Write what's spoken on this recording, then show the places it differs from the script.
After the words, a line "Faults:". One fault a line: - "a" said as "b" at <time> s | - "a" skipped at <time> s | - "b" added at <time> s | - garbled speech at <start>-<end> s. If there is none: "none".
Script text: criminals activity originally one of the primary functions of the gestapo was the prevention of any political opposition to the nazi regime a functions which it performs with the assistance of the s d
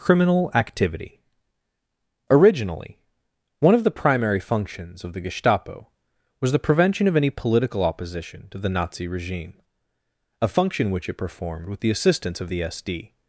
criminal activity originally one of the primary functions of the gestapo was the prevention of any political opposition to the nazi regime a function which it performed with the assistance of the s d
Faults:
- "criminals" said as "criminal" at 0.0 s
- "functions" said as "function" at 10.5 s
- "performs" said as "performed" at 11.2 s